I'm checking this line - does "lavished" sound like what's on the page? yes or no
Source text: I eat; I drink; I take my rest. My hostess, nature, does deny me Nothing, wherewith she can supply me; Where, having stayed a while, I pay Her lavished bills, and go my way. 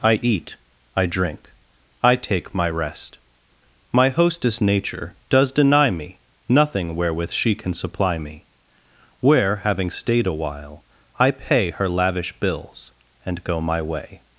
no